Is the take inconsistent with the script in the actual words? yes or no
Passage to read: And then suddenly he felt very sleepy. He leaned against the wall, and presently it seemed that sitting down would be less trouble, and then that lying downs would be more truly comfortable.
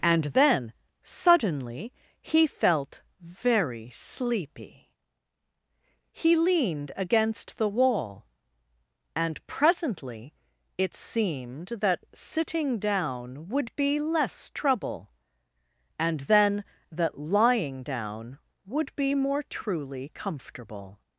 yes